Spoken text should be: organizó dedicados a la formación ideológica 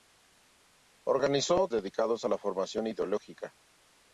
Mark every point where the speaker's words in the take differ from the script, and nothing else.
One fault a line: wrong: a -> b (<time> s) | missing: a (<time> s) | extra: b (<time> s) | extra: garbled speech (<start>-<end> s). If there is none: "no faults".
no faults